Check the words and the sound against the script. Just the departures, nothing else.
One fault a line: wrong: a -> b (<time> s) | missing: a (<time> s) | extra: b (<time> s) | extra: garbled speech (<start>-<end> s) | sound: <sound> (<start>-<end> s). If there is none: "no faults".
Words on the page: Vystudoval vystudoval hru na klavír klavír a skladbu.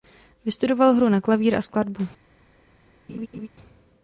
missing: vystudoval (0.9 s)
missing: klavír (1.6 s)
sound: laugh (3.1-3.5 s)